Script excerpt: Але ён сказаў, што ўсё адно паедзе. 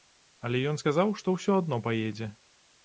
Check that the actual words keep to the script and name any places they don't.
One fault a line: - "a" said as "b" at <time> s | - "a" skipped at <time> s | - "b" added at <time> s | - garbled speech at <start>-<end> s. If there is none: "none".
none